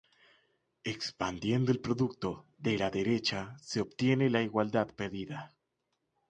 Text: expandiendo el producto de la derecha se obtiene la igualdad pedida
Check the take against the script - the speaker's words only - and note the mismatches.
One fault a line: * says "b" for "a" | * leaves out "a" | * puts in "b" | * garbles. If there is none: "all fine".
all fine